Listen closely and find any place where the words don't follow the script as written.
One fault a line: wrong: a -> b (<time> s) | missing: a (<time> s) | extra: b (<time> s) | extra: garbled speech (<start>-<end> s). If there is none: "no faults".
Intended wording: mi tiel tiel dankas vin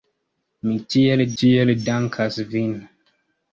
no faults